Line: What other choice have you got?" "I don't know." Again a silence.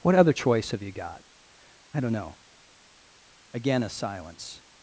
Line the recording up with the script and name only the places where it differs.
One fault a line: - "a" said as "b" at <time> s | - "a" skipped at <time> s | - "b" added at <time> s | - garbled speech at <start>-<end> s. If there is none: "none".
none